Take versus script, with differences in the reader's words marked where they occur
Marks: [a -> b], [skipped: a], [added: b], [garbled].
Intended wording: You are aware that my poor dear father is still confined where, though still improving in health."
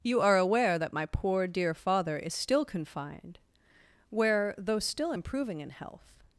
You are aware that my poor dear father is still confined where, though still improving in health."